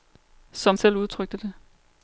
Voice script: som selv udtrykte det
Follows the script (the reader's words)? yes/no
yes